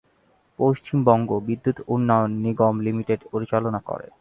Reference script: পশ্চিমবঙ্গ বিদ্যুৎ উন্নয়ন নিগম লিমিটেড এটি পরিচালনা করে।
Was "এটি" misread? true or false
true